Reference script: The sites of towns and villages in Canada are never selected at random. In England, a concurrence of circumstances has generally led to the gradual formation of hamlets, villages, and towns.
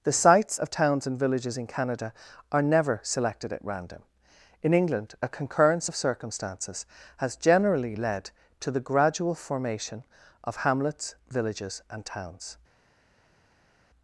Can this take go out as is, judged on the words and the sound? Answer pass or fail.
pass